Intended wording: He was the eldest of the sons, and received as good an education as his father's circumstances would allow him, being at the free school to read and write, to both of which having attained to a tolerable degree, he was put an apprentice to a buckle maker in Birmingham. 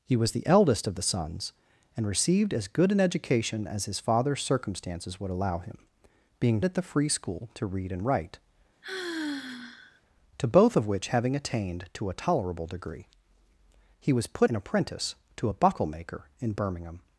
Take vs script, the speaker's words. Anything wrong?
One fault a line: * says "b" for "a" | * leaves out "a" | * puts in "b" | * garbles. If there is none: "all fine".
all fine